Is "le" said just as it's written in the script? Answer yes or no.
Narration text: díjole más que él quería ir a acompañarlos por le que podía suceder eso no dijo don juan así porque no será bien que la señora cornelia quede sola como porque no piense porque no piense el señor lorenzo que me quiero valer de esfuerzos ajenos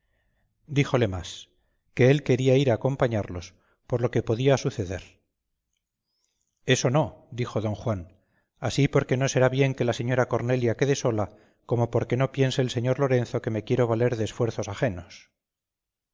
no